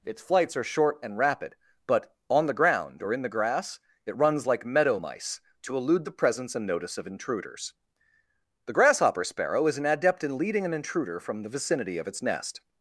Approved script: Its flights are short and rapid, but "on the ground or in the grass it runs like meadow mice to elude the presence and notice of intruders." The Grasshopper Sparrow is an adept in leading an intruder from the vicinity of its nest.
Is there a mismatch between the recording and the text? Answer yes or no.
no